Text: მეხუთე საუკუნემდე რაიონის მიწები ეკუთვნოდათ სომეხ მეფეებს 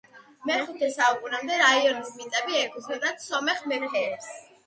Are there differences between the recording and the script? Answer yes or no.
no